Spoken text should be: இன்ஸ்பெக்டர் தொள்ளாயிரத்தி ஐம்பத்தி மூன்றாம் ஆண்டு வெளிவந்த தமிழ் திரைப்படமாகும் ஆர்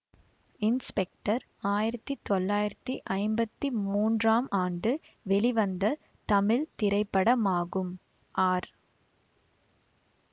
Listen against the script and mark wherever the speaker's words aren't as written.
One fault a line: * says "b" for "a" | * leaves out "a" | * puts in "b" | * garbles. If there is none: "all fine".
* puts in "ஆயிரத்தி"